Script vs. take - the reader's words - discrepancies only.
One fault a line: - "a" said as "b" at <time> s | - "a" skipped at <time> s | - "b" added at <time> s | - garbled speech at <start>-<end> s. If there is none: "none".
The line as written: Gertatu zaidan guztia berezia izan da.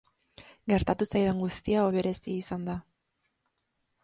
none